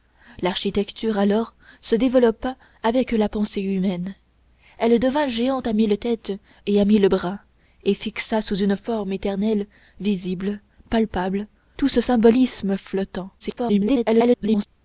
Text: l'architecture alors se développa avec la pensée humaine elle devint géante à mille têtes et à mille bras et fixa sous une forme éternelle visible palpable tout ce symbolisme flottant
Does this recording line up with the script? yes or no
no